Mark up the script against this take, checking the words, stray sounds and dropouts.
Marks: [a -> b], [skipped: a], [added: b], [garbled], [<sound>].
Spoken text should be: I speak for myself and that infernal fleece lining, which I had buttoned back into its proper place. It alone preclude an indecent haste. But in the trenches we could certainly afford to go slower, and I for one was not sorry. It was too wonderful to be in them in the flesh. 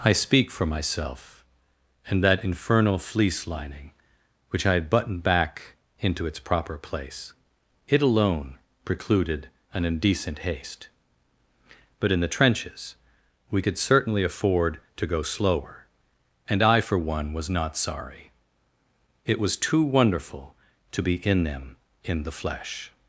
I speak for myself and that infernal fleece lining, which I had buttoned back into its proper place. It alone [preclude -> precluded] an indecent haste. But in the trenches we could certainly afford to go slower, and I for one was not sorry. It was too wonderful to be in them in the flesh.